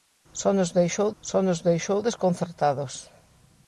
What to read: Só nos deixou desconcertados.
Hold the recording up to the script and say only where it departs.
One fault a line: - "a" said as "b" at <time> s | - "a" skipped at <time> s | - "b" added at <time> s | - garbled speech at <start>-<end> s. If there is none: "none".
- "só nos deixou" added at 1.2 s